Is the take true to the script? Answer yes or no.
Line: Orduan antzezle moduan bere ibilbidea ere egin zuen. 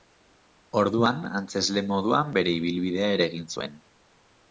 yes